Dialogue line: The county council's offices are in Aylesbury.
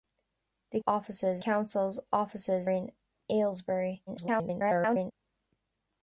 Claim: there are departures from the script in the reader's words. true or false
true